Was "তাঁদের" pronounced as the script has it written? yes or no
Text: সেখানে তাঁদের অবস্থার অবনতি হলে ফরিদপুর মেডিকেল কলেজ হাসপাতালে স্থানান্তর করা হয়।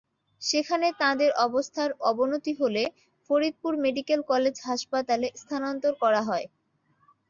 yes